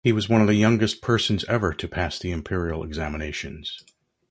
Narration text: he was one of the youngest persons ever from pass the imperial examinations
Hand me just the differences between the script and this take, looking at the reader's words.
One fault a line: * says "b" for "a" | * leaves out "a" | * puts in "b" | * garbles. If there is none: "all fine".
* says "to" for "from"